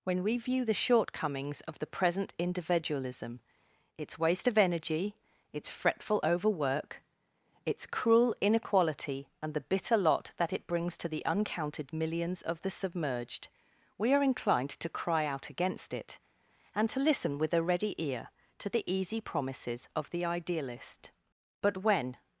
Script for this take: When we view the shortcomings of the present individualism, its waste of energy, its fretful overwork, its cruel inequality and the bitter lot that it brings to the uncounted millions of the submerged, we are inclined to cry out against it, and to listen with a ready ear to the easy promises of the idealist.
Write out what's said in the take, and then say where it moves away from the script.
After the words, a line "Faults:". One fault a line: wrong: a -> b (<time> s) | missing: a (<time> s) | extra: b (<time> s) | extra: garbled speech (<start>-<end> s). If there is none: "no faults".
When we view the shortcomings of the present individualism, its waste of energy, its fretful overwork, its cruel inequality and the bitter lot that it brings to the uncounted millions of the submerged, we are inclined to cry out against it, and to listen with a ready ear to the easy promises of the idealist. But when
Faults:
extra: But when (21.6 s)